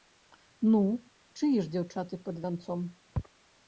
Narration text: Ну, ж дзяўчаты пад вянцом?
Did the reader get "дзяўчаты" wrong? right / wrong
right